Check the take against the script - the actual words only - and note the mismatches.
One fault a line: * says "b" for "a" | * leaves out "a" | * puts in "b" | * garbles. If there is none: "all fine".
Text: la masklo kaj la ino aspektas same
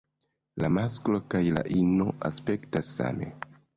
all fine